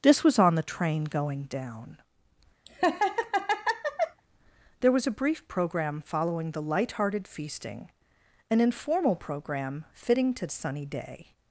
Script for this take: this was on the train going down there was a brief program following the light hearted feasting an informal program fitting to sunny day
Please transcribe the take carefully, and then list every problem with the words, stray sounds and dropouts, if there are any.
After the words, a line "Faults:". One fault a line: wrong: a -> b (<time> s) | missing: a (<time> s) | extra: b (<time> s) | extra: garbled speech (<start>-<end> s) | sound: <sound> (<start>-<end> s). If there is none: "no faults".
this was on the train going down there was a brief program following the light hearted feasting an informal program fitting to sunny day
Faults:
sound: laugh (2.7-4.2 s)